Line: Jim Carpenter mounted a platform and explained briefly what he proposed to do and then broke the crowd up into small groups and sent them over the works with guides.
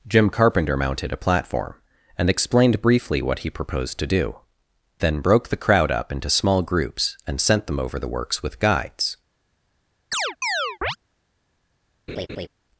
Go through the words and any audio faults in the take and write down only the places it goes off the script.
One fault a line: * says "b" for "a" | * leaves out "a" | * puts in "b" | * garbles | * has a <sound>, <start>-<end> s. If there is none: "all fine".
* leaves out "and"
* has a chirp, 10.1-11.0 s
* has a laugh, 12.1-12.5 s